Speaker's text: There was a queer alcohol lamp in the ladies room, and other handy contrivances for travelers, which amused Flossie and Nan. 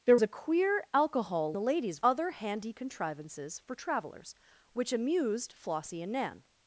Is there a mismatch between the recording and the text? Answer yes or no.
yes